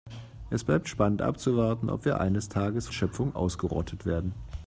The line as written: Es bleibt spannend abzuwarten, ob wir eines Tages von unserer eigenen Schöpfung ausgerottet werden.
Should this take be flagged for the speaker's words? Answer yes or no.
yes